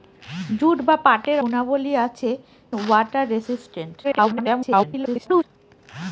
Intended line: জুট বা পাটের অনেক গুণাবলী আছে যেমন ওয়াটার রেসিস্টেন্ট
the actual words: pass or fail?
fail